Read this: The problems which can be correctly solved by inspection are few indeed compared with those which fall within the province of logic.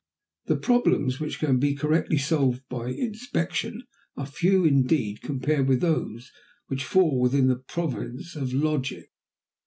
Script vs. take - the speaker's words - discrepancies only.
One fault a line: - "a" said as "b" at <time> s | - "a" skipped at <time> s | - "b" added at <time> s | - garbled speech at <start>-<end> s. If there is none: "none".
none